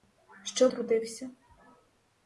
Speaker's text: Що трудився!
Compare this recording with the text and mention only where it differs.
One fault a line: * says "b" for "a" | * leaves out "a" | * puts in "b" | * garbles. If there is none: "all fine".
all fine